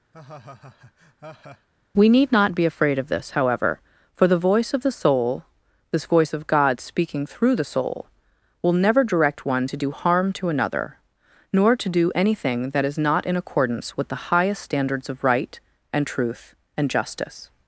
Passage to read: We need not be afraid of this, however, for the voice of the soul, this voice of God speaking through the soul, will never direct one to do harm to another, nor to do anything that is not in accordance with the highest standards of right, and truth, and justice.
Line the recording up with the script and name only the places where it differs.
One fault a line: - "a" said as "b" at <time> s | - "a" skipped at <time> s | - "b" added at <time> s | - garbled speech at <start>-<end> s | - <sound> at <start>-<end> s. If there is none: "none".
- laugh at 0.1-1.7 s